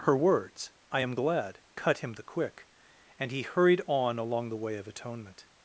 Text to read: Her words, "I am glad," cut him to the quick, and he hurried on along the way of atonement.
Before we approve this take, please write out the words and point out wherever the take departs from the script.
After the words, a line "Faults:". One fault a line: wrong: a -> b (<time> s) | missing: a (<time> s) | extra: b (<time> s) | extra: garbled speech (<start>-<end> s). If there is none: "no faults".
Her words, "I am glad," cut him the quick, and he hurried on along the way of atonement.
Faults:
missing: to (2.1 s)